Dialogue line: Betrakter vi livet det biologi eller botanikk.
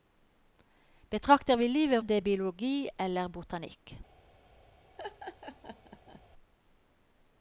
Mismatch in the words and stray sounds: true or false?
true